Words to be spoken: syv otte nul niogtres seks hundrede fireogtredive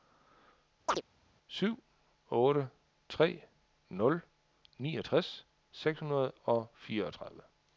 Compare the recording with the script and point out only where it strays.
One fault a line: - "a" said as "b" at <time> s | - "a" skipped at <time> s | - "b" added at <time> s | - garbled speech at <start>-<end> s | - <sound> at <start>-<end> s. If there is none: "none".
- chirp at 0.9-1.0 s
- "tre" added at 3.1 s
- "og" added at 6.4 s